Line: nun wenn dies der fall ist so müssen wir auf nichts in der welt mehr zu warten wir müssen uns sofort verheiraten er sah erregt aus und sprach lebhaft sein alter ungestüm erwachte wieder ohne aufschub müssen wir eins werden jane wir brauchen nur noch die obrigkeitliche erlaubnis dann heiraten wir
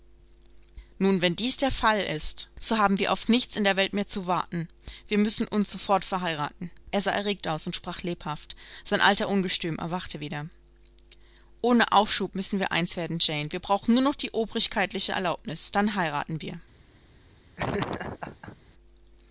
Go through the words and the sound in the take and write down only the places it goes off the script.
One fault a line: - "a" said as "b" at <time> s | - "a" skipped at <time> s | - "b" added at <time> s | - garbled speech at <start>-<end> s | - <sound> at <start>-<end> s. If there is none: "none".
- "müssen" said as "haben" at 2.8 s
- laugh at 17.6-18.6 s